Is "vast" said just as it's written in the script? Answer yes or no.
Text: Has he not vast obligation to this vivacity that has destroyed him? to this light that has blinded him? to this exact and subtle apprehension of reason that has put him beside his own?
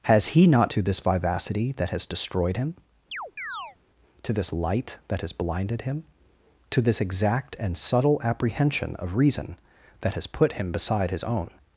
no